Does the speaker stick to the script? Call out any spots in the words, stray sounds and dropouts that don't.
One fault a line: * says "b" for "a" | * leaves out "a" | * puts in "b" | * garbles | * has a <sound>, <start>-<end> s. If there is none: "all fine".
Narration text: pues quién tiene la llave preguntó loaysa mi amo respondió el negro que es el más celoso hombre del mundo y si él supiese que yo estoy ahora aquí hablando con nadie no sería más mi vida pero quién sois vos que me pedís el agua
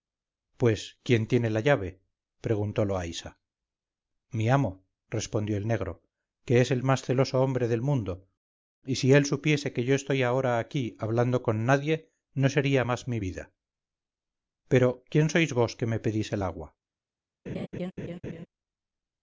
* has a laugh, 17.5-18.5 s